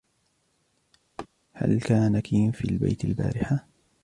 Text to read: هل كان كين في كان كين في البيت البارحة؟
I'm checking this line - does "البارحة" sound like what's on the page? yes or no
yes